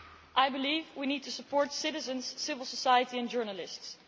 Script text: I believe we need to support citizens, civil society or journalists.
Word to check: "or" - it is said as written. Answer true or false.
false